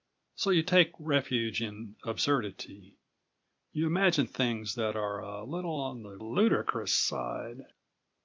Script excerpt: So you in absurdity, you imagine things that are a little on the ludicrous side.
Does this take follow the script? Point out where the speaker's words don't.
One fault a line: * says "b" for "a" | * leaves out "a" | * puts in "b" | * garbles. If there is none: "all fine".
* puts in "take refuge"